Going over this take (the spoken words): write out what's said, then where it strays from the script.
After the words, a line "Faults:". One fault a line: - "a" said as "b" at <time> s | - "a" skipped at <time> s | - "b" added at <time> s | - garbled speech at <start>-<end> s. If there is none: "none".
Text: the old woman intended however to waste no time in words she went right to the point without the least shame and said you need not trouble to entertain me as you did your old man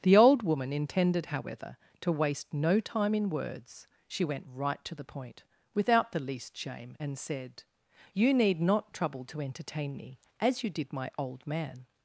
the old woman intended however to waste no time in words she went right to the point without the least shame and said you need not trouble to entertain me as you did my old man
Faults:
- "your" said as "my" at 10.9 s